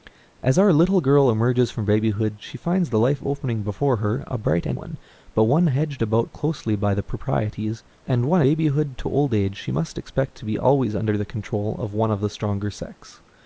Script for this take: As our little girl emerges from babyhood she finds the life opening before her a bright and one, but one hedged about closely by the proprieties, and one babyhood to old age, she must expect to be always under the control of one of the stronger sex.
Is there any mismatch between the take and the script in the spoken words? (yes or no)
no